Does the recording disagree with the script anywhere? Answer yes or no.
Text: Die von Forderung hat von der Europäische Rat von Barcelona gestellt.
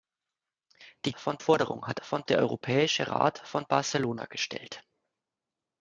no